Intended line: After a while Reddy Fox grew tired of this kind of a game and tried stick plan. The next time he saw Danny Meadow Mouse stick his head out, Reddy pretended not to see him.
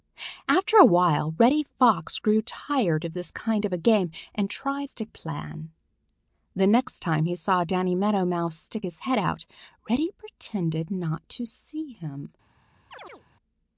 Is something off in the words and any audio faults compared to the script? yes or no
yes